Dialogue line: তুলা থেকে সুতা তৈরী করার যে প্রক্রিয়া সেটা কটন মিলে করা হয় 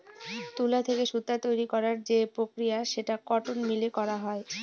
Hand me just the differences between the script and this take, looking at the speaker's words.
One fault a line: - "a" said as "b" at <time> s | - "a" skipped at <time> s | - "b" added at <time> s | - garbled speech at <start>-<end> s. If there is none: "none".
none